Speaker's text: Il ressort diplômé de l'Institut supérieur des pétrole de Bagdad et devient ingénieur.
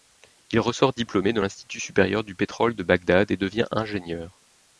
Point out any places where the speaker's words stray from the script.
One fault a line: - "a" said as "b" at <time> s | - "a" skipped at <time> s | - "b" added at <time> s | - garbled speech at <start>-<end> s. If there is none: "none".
- "des" said as "du" at 2.2 s